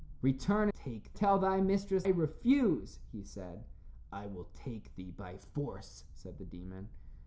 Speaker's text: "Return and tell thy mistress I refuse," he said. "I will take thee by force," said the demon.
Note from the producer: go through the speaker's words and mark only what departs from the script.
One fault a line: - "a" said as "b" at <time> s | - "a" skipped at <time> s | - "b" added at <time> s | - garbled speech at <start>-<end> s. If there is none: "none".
- "and" said as "take" at 0.7 s
- "I" skipped at 2.1 s